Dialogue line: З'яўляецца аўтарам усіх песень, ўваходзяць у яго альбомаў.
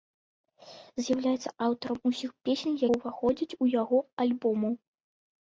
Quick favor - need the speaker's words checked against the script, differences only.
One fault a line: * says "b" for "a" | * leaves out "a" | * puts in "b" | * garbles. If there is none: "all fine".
all fine